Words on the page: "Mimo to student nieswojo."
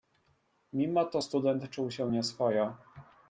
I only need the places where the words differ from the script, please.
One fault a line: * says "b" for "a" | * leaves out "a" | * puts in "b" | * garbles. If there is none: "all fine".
* puts in "czuł się"